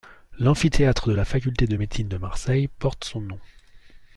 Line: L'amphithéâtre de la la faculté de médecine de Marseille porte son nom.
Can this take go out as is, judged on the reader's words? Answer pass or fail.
fail